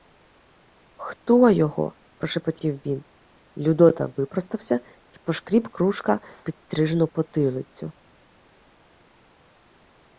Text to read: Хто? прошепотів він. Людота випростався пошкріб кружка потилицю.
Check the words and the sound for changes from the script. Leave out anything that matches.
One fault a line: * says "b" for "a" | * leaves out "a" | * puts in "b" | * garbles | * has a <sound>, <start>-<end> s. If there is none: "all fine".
* puts in "його"
* puts in "й"
* puts in "підстрижену"